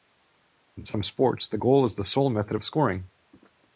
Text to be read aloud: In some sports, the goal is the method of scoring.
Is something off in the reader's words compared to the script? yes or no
yes